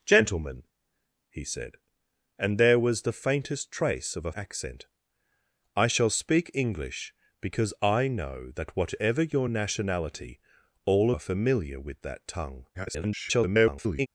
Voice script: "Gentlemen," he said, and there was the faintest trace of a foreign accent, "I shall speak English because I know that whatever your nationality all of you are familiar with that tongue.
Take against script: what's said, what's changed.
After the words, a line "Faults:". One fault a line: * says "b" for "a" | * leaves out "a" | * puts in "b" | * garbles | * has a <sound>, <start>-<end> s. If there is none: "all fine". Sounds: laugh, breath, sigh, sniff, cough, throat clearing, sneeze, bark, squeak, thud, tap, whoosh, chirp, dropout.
"Gentlemen," he said, and there was the faintest trace of a accent, "I shall speak English because I know that whatever your nationality all are familiar with that tongue. [garbled]
Faults:
* leaves out "foreign"
* leaves out "of you"
* garbles